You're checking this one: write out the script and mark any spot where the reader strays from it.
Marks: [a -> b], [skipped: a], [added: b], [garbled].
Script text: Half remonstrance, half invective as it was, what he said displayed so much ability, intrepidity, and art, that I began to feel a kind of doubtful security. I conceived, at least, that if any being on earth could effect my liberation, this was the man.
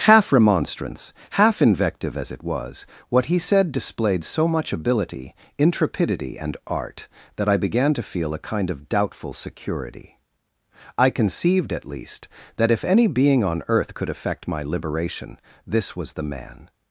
Half remonstrance, half invective as it was, what he said displayed so much ability, intrepidity, and art, that I began to feel a kind of doubtful security. I conceived, at least, that if any being on earth could effect my liberation, this was the man.